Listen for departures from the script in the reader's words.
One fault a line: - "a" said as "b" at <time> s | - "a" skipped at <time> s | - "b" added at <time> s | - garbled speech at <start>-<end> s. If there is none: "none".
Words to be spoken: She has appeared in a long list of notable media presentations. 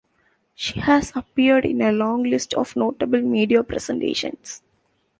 none